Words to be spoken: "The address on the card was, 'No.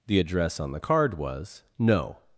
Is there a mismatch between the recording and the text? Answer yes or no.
no